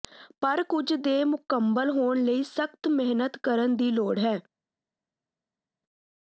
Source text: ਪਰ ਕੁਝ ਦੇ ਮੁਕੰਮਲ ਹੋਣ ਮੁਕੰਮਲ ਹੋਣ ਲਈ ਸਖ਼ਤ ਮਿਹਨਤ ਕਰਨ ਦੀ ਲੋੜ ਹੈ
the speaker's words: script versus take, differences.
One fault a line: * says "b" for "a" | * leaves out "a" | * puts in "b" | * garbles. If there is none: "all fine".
* leaves out "ਮੁਕੰਮਲ ਹੋਣ"